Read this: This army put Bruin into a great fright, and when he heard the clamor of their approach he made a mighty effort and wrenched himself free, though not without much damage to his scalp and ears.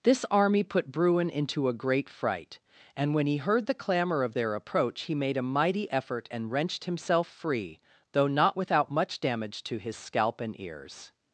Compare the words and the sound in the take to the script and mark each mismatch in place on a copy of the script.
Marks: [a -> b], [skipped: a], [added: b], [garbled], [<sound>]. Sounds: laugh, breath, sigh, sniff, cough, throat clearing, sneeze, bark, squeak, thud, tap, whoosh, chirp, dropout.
This army put Bruin into a great fright, and when he heard the clamor of their approach he made a mighty effort and wrenched himself free, though not without much damage to his scalp and ears.